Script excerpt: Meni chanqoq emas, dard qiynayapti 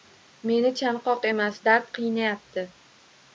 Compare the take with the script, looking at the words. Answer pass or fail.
pass